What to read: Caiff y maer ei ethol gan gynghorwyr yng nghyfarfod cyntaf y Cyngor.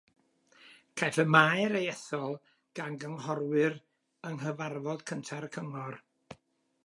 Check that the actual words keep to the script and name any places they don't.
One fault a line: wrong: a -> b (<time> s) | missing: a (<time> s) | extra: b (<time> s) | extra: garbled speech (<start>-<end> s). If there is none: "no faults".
no faults